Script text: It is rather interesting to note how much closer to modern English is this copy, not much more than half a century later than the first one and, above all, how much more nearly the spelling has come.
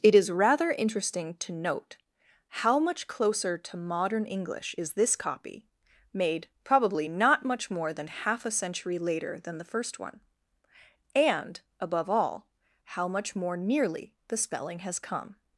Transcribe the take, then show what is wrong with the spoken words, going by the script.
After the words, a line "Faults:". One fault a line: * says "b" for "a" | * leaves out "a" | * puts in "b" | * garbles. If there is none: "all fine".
It is rather interesting to note how much closer to modern English is this copy, made probably not much more than half a century later than the first one and, above all, how much more nearly the spelling has come.
Faults:
* puts in "made probably"